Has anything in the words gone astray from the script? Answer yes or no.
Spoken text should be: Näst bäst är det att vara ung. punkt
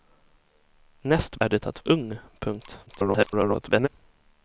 yes